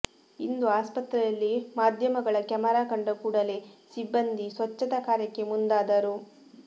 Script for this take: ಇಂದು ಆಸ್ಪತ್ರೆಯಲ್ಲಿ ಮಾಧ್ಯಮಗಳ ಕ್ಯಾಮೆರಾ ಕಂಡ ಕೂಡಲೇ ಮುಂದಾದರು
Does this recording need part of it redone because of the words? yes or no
yes